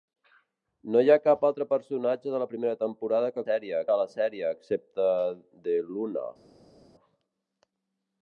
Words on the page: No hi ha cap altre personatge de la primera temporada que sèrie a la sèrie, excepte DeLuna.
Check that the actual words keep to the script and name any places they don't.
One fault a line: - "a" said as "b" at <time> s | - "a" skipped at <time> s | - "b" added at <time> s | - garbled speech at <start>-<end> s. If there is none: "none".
none